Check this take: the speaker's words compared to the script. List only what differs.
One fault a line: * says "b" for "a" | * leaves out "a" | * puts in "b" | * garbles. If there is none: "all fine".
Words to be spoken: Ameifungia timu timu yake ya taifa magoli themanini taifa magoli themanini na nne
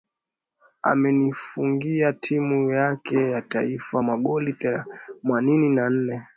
* leaves out "timu"
* leaves out "taifa magoli themanini"